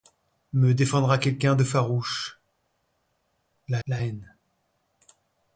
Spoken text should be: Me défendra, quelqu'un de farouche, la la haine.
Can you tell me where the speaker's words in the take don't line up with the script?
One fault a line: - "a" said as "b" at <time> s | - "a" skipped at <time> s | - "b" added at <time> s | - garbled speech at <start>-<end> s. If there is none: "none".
none